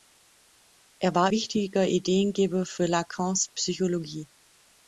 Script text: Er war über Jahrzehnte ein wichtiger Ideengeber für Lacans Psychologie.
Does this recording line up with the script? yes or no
no